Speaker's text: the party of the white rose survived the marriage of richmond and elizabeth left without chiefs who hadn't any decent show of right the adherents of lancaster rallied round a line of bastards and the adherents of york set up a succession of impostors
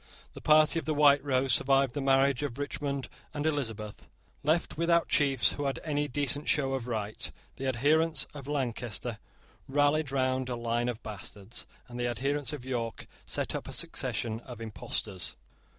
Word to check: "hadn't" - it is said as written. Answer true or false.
false